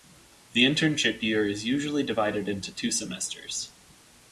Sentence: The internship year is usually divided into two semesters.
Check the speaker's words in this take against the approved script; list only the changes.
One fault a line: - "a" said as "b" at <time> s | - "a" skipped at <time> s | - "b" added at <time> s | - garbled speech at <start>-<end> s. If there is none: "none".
none